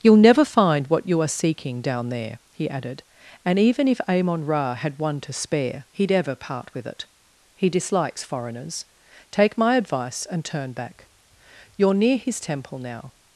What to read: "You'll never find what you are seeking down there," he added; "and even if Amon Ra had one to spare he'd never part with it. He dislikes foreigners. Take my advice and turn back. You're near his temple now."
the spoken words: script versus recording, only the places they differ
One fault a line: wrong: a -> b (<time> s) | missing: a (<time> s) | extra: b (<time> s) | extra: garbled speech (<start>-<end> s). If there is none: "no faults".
wrong: never -> ever (6.1 s)